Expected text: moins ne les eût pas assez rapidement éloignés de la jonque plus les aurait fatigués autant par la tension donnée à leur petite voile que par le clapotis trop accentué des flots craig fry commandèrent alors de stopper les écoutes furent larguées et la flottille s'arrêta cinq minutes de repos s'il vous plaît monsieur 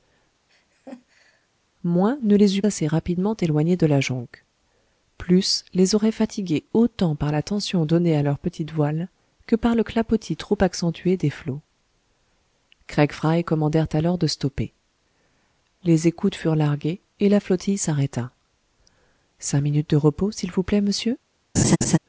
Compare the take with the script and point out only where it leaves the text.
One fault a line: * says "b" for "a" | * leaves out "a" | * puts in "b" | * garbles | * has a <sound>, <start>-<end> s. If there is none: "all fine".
* has a laugh, 0.5-1.5 s
* leaves out "pas"
* has a laugh, 21.6-22.0 s